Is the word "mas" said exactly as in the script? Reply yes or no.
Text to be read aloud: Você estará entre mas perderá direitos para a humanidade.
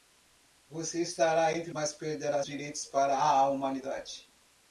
yes